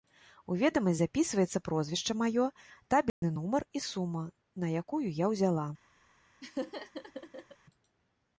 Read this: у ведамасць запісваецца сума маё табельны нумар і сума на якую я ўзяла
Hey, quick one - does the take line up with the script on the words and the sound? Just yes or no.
no